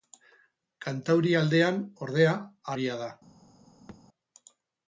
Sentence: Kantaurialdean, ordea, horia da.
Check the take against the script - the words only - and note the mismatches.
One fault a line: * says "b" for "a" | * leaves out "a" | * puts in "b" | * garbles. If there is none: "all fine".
all fine